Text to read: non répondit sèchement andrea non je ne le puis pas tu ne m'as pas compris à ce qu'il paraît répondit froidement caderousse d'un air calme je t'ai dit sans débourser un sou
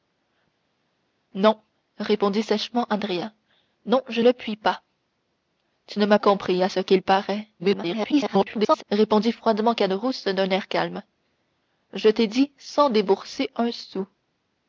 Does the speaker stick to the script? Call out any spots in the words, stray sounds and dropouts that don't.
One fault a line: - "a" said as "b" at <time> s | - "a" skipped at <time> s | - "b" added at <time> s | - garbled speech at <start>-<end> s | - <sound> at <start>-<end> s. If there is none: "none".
- "ne" skipped at 4.2 s
- "pas" skipped at 6.2 s
- garbled speech at 7.6-8.8 s